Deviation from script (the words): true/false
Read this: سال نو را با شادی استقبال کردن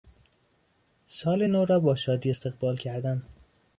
false